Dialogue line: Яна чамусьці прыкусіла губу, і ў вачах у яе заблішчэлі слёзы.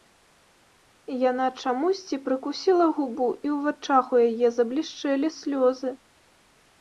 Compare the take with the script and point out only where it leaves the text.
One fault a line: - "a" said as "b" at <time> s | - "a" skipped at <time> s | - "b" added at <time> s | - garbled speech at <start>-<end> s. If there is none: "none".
none